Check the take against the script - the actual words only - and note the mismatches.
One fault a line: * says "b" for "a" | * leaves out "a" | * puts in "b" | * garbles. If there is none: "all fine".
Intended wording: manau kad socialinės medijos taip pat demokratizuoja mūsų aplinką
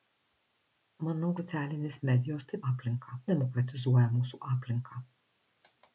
* leaves out "kad"
* says "aplinką" for "pat"